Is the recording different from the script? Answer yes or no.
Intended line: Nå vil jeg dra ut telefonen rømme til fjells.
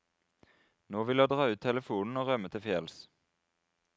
yes